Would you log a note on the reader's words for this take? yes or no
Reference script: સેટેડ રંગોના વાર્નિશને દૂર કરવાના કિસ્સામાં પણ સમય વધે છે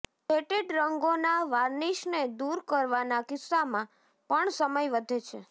no